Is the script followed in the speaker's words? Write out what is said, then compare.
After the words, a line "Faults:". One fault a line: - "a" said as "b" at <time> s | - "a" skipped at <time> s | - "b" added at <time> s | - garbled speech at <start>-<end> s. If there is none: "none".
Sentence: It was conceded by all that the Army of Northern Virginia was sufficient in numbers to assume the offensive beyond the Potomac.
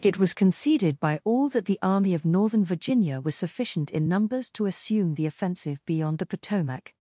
It was conceded by all that the Army of Northern Virginia was sufficient in numbers to assume the offensive beyond the Potomac.
Faults:
none